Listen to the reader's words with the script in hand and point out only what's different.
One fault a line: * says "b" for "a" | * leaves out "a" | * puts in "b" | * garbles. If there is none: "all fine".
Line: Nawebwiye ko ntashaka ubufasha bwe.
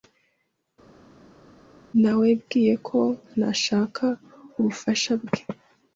all fine